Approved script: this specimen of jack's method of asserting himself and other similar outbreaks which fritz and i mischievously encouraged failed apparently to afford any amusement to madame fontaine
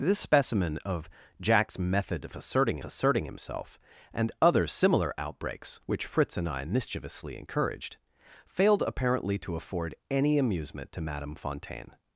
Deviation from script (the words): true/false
true